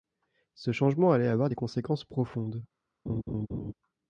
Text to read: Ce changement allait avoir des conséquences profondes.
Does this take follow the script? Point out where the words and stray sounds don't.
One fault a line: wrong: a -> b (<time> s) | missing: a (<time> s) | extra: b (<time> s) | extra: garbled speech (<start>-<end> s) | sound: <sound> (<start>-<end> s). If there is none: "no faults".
sound: laugh (3.1-3.7 s)